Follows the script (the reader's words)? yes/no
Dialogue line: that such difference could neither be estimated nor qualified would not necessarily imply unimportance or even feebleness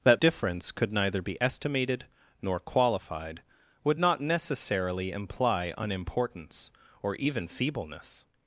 no